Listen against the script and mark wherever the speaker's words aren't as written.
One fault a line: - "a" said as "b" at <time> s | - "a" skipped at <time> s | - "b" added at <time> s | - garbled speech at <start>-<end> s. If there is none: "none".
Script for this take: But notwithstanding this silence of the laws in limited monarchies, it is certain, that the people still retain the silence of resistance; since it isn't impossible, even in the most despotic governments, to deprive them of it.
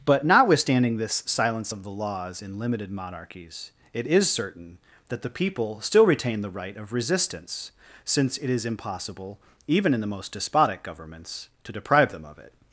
- "silence" said as "right" at 6.5 s
- "isn't" said as "is" at 8.5 s